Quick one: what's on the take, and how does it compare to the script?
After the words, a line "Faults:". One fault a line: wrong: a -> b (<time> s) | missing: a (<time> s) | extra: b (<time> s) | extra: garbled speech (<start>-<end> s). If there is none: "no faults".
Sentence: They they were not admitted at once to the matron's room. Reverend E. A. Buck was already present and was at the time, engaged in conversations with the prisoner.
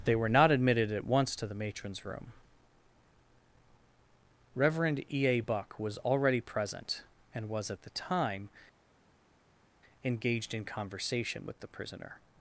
They were not admitted at once to the matron's room. Reverend E. A. Buck was already present and was at the time, engaged in conversation with the prisoner.
Faults:
missing: they (0.1 s)
wrong: conversations -> conversation (10.6 s)